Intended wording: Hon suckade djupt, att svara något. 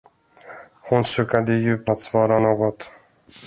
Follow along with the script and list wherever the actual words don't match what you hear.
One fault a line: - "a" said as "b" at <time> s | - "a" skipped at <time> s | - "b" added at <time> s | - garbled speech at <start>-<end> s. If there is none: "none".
none